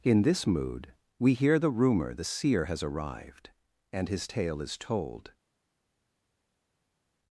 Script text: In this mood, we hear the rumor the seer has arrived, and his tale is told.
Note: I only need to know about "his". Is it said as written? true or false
true